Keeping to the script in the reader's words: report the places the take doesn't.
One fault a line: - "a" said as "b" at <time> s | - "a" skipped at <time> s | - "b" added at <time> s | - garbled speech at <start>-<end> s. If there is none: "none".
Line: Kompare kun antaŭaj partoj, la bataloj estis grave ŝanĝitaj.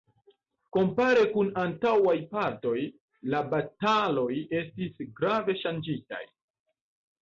none